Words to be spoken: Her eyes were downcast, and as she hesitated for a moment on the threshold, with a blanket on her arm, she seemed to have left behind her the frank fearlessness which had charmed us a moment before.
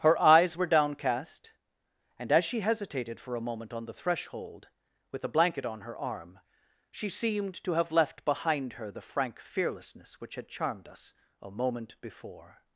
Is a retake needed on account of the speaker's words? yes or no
no